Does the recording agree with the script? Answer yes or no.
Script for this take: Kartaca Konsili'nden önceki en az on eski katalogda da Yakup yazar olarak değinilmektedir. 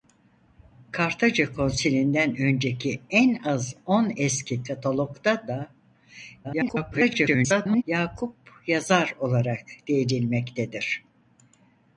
no